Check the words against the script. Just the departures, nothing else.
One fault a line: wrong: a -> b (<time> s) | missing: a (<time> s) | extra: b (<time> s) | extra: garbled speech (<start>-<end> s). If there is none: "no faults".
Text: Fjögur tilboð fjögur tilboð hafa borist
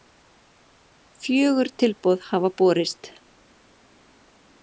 missing: fjögur tilboð (2.3 s)